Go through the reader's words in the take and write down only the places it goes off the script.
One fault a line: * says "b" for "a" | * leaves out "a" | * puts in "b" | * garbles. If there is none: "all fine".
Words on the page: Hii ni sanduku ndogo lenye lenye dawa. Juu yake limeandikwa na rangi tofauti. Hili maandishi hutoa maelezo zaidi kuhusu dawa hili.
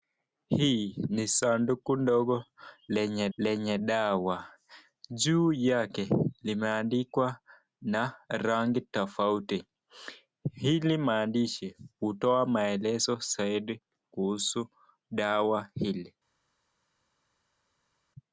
all fine